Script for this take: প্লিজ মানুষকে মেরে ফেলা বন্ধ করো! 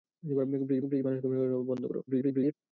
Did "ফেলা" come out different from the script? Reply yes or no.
no